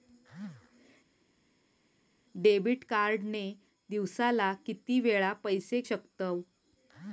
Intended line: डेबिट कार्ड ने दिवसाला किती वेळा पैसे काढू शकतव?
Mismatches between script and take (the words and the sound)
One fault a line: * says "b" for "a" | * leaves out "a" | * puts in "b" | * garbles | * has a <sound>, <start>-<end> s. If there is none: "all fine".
* leaves out "काढू"